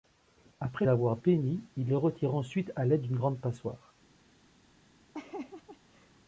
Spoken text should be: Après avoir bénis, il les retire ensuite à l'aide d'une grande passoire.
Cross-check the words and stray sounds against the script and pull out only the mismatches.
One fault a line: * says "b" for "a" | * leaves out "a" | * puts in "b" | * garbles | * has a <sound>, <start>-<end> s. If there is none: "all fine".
* has a laugh, 5.1-6.2 s